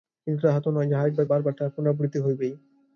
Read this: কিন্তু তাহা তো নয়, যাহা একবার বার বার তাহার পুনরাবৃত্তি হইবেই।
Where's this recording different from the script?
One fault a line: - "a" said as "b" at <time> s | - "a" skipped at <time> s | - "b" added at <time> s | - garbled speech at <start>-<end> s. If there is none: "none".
none